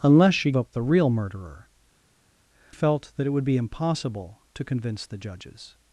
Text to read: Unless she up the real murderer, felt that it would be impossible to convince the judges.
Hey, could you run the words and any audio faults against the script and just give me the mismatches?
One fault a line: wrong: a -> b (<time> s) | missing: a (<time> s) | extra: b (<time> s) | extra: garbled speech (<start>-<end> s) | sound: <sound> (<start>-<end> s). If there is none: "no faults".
no faults